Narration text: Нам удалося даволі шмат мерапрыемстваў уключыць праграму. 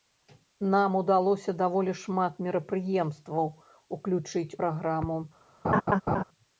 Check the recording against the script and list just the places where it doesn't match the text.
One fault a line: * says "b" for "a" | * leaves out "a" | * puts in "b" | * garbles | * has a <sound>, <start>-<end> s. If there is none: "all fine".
* has a laugh, 5.6-6.2 s